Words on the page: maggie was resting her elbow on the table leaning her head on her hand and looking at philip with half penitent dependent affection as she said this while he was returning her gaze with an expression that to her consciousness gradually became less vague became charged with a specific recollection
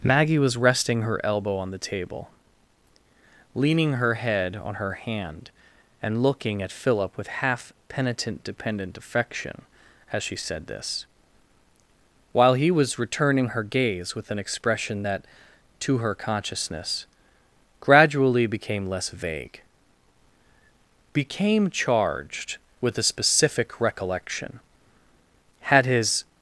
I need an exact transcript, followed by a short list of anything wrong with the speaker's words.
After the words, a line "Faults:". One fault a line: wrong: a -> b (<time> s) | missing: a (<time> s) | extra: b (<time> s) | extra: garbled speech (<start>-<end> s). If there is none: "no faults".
maggie was resting her elbow on the table leaning her head on her hand and looking at philip with half penitent dependent affection as she said this while he was returning her gaze with an expression that to her consciousness gradually became less vague became charged with a specific recollection had his
Faults:
extra: had his (25.6 s)